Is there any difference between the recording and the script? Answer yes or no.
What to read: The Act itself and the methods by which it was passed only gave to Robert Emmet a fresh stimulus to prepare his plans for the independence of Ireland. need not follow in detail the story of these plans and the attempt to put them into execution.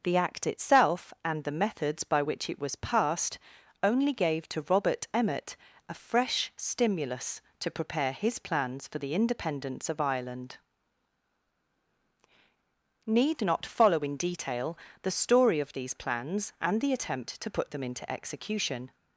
no